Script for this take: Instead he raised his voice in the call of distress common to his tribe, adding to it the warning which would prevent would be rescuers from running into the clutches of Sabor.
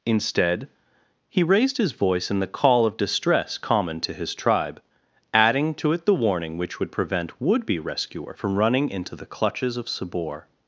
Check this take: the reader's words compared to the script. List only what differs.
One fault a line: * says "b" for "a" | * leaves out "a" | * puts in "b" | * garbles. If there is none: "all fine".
* says "rescuer" for "rescuers"